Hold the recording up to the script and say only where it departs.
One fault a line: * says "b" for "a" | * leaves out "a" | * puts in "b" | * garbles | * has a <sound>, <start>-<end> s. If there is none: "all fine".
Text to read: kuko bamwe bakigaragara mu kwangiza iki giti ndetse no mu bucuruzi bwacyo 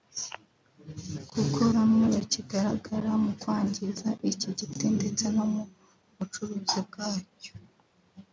all fine